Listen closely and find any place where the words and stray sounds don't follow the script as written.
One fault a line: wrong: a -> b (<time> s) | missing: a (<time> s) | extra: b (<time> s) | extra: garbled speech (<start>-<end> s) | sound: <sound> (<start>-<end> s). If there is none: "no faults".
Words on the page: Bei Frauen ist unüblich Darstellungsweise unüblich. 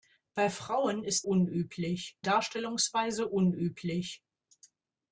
no faults